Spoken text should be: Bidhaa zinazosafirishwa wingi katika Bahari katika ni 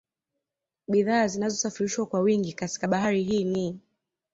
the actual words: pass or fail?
fail